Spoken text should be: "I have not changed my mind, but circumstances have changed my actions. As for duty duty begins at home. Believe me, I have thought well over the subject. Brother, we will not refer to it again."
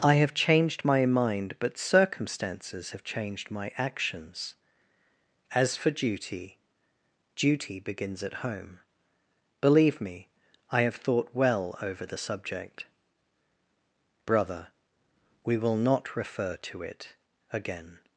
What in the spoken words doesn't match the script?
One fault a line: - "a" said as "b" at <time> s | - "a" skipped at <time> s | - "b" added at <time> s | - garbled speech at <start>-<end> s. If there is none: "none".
- "not" skipped at 0.3 s